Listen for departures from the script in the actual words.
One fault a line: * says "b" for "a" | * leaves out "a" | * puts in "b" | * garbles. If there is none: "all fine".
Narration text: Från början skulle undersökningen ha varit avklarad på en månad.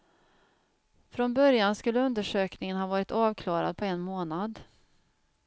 all fine